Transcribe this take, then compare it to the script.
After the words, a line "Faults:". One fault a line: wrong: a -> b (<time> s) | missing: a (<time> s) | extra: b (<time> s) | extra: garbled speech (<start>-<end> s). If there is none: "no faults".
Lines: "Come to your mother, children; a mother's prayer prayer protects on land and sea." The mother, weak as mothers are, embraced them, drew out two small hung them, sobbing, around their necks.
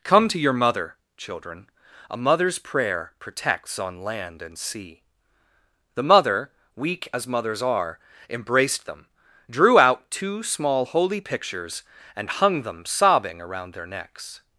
"Come to your mother, children; a mother's prayer protects on land and sea." The mother, weak as mothers are, embraced them, drew out two small holy pictures, and hung them, sobbing, around their necks.
Faults:
missing: prayer (3.1 s)
extra: holy pictures and (10.8 s)